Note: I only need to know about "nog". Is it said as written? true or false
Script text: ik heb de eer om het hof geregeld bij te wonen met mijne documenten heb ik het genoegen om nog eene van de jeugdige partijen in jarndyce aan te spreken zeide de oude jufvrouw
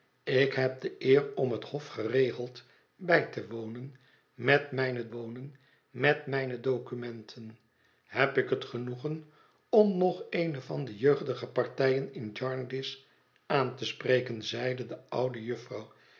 true